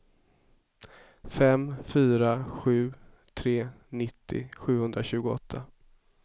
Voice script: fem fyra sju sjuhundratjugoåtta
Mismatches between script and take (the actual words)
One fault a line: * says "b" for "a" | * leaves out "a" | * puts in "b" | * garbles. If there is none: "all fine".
* puts in "tre nittio"